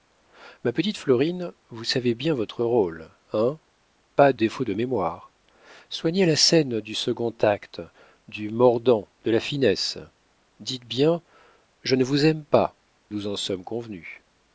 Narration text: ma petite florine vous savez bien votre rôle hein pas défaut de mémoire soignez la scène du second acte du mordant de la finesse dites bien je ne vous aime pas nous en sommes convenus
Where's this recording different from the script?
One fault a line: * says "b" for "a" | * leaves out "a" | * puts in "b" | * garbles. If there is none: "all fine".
all fine